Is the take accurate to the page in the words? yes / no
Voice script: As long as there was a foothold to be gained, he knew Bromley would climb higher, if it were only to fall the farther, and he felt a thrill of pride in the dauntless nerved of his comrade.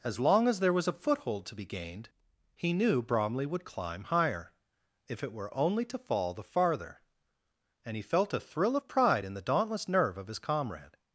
no